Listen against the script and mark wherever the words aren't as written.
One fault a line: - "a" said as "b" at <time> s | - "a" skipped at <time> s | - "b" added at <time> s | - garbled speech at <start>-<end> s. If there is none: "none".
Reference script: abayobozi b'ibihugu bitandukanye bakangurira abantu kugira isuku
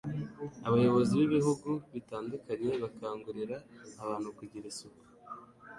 none